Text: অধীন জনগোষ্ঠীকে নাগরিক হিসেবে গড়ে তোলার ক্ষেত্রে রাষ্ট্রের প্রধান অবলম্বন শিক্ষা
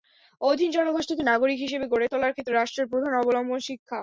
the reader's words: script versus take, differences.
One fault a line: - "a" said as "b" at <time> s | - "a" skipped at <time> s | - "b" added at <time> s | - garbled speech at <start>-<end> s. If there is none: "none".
none